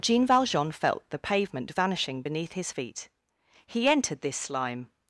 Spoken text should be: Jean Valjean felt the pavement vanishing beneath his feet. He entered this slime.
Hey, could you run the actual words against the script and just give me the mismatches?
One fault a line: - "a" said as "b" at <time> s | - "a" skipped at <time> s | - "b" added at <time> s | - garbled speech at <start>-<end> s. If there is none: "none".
none